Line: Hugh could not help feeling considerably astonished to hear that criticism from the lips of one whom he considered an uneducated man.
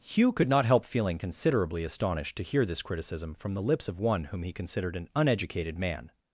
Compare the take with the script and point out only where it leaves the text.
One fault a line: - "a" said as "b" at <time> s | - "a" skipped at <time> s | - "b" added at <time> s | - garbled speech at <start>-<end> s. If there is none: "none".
- "that" said as "this" at 2.6 s